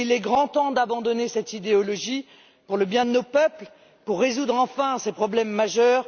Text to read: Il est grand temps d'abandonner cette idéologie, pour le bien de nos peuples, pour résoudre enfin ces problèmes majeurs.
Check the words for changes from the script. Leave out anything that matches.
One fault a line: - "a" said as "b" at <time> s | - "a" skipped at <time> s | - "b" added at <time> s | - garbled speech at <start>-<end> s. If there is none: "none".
none